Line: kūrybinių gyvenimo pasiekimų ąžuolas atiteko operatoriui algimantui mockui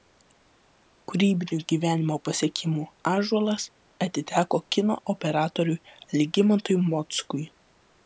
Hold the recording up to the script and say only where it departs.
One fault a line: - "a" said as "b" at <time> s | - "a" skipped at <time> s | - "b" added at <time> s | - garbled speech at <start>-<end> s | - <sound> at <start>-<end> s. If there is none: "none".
- "kino" added at 4.8 s